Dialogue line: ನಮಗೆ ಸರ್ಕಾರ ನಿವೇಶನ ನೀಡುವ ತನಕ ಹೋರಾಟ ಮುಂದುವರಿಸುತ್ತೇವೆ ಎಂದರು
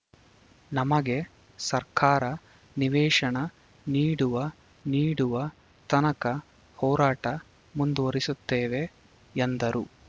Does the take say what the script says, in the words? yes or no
no